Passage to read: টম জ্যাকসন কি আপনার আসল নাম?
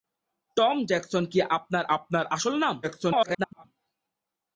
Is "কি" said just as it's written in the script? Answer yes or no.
yes